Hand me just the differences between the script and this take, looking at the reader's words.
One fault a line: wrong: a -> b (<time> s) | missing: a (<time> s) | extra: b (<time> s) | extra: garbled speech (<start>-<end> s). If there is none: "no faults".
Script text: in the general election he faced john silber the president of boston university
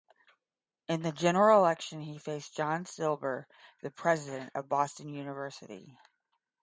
no faults